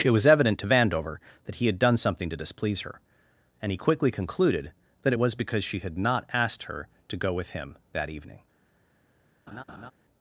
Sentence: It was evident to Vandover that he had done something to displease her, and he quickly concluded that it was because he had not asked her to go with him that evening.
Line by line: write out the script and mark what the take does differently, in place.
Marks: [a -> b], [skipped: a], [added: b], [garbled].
It was evident to Vandover that he had done something to displease her, and he quickly concluded that it was because [he -> she] had not asked her to go with him that evening.